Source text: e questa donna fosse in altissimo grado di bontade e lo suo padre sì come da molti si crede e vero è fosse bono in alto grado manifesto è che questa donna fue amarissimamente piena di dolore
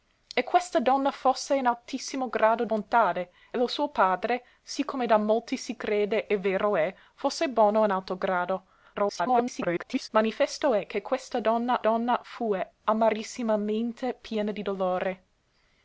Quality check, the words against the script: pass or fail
fail